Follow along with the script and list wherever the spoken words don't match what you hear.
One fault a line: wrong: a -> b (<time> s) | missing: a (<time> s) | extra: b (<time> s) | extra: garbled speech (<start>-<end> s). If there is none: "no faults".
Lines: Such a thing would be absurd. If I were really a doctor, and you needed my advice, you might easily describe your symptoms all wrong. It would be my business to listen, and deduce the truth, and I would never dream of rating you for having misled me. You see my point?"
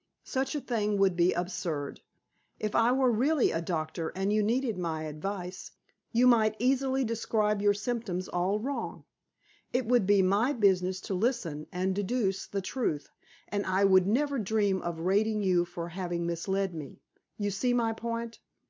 no faults